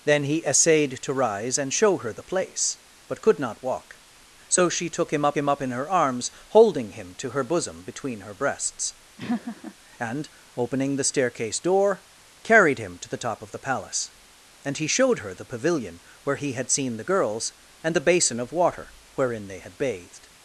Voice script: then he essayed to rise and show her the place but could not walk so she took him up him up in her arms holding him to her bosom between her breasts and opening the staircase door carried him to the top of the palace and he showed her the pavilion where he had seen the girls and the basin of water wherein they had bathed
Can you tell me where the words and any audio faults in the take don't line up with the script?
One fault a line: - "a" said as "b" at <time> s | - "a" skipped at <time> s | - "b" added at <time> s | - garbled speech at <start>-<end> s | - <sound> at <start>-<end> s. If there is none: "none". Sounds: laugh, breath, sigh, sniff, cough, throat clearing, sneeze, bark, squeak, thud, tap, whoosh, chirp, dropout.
- laugh at 9.2-9.7 s